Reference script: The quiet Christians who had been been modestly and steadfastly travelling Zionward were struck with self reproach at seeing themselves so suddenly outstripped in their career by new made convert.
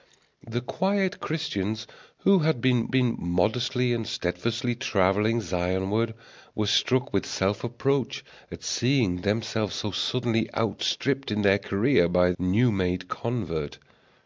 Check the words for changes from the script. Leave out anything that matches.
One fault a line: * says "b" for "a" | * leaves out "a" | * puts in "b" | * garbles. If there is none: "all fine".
all fine